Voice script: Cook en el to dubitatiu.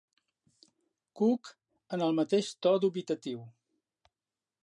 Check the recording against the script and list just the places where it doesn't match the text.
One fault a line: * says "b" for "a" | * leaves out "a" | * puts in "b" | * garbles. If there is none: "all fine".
* puts in "mateix"